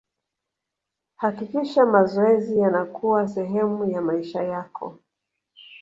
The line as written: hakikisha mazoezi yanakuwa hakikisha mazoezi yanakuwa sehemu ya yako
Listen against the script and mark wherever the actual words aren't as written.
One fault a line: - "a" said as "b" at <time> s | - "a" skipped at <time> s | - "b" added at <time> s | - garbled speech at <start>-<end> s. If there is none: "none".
- "hakikisha mazoezi yanakuwa" skipped at 3.3 s
- "maisha" added at 4.0 s